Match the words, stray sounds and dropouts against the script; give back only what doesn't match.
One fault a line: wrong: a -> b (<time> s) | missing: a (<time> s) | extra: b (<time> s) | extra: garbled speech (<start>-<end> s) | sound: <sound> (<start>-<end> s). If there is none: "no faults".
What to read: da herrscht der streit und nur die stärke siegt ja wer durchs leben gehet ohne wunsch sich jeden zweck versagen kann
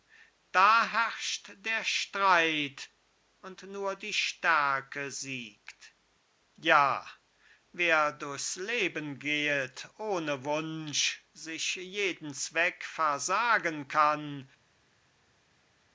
no faults